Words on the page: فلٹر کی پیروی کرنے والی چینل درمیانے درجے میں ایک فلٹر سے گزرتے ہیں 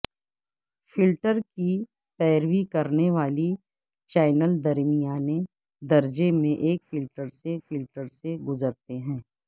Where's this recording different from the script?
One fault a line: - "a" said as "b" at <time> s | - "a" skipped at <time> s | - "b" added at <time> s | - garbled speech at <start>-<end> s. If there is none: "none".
- "فلٹر سے" added at 7.7 s